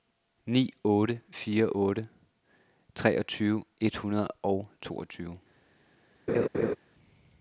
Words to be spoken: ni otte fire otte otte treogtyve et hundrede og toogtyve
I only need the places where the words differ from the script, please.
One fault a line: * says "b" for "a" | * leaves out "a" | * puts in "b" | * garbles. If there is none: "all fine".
* leaves out "otte"